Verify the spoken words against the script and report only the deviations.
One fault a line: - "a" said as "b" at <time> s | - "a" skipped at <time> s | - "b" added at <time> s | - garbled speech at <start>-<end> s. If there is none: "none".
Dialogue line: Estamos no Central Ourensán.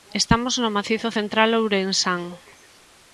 - "Macizo" added at 0.8 s